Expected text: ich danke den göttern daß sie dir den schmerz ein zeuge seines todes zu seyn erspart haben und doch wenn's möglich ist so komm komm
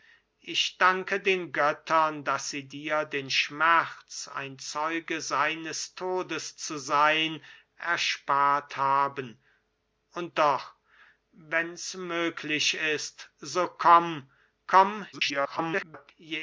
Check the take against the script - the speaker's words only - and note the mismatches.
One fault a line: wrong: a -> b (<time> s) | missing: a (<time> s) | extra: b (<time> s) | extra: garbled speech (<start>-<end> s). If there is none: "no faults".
extra: garbled speech (15.1-16.1 s)